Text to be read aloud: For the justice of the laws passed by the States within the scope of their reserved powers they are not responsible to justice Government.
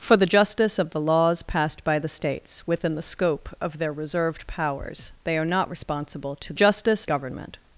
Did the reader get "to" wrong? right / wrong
right